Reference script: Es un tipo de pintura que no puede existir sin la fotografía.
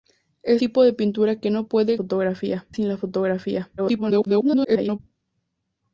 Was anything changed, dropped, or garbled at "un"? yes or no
yes